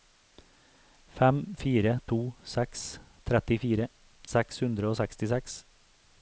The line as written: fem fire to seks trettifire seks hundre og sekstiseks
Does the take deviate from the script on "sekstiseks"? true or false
false